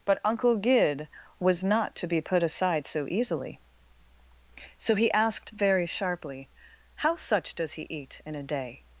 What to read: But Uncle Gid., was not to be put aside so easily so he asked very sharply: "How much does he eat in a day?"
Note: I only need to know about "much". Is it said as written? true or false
false